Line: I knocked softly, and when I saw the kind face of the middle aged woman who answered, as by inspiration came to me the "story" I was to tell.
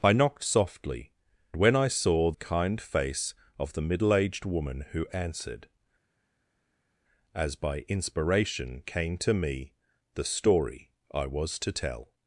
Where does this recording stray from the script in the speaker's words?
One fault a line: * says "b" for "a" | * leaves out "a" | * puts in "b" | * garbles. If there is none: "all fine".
* leaves out "and"
* leaves out "the"